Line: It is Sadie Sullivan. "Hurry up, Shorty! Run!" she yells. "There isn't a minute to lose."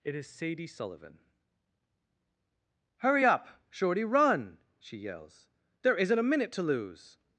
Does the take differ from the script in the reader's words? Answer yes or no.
no